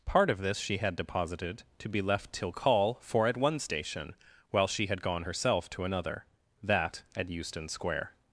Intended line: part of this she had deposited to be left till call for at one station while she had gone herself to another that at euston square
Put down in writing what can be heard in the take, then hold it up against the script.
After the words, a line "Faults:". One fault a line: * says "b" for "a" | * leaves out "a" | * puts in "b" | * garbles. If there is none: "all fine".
part of this she had deposited to be left till call for at one station while she had gone herself to another that at euston square
Faults:
all fine